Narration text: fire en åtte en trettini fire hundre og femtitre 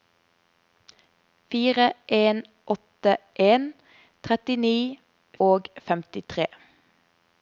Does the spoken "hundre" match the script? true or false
false